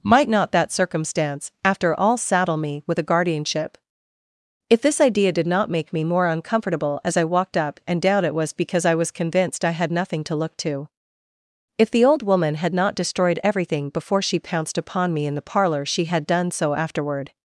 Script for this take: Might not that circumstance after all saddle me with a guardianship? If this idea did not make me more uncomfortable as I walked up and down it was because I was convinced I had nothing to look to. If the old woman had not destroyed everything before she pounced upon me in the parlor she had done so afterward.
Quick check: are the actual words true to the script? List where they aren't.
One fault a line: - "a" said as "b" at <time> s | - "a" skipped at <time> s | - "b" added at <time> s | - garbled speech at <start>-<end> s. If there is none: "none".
none